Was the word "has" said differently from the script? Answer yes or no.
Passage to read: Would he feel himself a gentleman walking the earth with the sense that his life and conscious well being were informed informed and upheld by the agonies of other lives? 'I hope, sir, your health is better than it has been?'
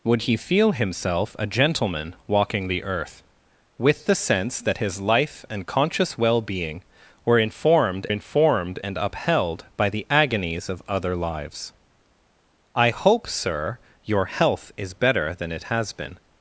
no